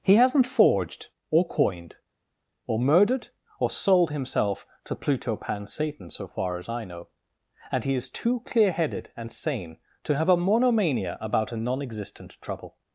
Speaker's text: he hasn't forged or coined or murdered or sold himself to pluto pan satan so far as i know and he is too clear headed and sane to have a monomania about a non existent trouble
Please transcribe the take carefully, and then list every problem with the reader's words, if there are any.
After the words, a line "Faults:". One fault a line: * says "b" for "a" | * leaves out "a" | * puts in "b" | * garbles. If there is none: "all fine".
he hasn't forged or coined or murdered or sold himself to pluto pan satan so far as i know and he is too clear headed and sane to have a monomania about a non existent trouble
Faults:
all fine